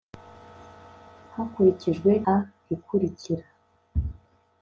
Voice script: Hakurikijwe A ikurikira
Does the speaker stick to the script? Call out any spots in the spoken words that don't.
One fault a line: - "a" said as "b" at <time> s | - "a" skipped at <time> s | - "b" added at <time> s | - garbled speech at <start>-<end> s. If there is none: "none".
none